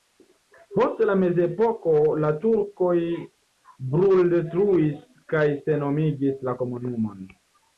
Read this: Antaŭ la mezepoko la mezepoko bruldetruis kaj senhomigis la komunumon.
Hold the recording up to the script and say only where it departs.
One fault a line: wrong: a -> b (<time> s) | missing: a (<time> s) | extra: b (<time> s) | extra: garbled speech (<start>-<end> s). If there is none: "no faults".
wrong: Antaŭ -> Post (0.8 s)
wrong: mezepoko -> turkoj (2.4 s)